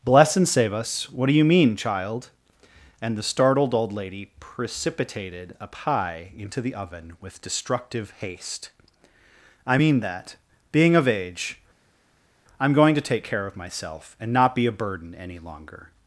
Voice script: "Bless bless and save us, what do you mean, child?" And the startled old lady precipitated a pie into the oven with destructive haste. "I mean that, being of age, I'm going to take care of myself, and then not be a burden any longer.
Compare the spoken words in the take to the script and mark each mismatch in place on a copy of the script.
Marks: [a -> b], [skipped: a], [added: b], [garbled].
"Bless [skipped: bless] and save us, what do you mean, child?" And the startled old lady precipitated a pie into the oven with destructive haste. "I mean that, being of age, I'm going to take care of myself, and [skipped: then] not be a burden any longer.